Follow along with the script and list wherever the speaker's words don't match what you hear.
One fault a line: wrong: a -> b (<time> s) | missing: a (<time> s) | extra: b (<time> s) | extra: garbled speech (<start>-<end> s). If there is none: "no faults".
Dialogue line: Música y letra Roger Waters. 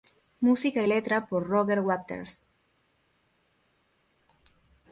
extra: por (1.3 s)